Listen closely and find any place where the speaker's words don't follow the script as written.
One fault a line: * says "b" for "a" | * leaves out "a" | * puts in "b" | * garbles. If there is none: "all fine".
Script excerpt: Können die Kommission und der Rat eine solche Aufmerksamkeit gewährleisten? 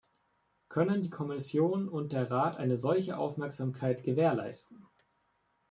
all fine